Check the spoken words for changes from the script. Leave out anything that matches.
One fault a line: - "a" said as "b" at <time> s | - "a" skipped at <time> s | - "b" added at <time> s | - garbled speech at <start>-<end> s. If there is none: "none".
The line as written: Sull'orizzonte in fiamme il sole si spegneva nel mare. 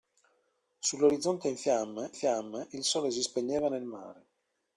- "fiamme" added at 2.1 s